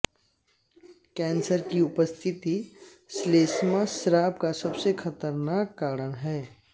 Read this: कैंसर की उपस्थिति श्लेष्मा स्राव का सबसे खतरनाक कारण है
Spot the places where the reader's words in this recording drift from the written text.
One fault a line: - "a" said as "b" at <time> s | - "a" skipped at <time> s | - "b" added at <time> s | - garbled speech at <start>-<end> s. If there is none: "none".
none